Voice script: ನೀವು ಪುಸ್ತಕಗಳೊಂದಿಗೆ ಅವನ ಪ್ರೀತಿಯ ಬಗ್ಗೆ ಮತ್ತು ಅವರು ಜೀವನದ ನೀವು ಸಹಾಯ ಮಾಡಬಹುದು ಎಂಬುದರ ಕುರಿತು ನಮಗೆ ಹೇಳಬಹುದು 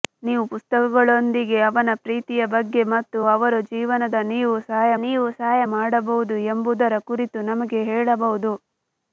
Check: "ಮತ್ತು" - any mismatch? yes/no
no